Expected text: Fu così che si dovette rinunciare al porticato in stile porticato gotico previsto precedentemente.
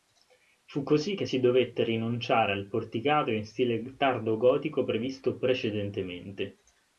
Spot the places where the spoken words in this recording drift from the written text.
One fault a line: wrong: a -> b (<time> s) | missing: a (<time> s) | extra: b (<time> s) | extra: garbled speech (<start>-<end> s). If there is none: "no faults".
wrong: porticato -> tardo (4.0 s)